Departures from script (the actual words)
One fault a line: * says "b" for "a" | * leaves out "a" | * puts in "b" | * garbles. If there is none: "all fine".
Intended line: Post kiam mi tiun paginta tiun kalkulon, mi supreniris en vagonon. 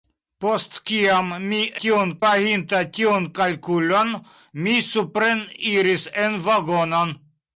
all fine